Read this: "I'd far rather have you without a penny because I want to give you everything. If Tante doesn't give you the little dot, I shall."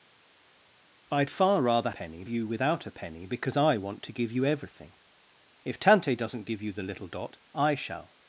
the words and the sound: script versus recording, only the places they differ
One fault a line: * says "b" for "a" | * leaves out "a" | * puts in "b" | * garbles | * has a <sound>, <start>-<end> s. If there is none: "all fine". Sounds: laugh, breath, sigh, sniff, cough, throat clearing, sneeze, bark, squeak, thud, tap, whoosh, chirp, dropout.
* says "penny" for "have"